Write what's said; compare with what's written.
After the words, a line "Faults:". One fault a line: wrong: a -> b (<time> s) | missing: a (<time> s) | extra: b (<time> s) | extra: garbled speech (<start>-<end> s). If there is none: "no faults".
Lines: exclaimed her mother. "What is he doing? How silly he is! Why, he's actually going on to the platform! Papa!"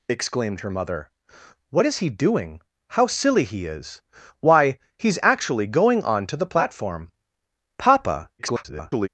exclaimed her mother. "What is he doing? How silly he is! Why, he's actually going on to the platform! Papa!" [garbled]
Faults:
extra: garbled speech (8.4-9.1 s)